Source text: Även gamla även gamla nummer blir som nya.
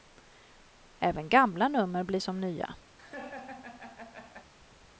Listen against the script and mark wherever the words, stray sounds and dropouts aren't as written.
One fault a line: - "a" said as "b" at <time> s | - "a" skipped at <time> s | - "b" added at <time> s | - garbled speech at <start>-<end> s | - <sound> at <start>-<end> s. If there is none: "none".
- "även gamla" skipped at 1.7 s
- laugh at 3.0-4.5 s